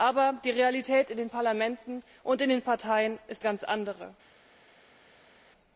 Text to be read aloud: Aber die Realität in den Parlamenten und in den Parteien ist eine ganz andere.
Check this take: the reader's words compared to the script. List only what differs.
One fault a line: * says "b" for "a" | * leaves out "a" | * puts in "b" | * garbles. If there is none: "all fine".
* leaves out "eine"